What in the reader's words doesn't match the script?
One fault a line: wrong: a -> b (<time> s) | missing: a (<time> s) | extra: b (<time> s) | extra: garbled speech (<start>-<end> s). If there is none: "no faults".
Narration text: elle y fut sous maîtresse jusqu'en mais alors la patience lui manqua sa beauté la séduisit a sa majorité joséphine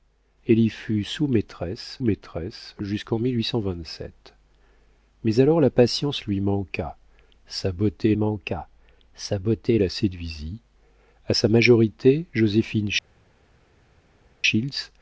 extra: maîtresse (2.0 s)
extra: manqua sa beauté (8.2 s)